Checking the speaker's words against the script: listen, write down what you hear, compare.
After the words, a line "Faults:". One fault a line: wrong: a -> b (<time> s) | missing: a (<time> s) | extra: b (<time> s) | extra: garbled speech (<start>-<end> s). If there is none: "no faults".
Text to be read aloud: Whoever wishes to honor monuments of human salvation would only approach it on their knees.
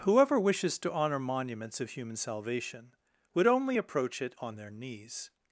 Whoever wishes to honor monuments of human salvation would only approach it on their knees.
Faults:
no faults